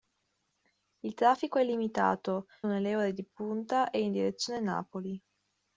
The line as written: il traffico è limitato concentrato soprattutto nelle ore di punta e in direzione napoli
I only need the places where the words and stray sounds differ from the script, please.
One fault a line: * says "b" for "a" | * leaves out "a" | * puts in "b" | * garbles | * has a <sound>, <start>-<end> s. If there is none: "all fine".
* leaves out "concentrato soprattutto"